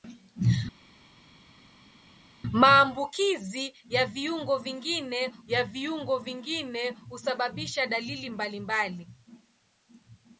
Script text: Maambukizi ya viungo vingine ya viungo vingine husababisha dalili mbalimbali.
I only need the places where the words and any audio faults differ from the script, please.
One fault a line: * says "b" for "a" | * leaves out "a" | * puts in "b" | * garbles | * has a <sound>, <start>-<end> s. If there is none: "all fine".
all fine